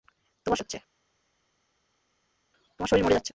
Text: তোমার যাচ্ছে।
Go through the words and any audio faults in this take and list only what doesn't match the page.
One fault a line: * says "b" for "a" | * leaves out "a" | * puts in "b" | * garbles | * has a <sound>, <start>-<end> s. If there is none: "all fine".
all fine